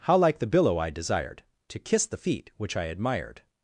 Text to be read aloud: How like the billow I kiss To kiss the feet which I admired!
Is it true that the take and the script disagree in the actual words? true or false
true